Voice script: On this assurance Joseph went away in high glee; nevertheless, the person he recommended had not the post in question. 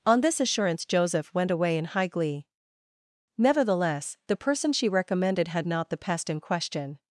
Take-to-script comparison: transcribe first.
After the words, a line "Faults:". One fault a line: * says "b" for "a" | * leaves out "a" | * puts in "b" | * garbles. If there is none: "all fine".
On this assurance Joseph went away in high glee; nevertheless, the person she recommended had not the pest in question.
Faults:
* says "she" for "he"
* says "pest" for "post"